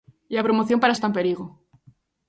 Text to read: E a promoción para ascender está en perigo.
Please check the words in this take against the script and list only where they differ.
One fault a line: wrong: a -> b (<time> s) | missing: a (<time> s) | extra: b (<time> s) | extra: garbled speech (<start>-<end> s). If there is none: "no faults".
missing: ascender (0.9 s)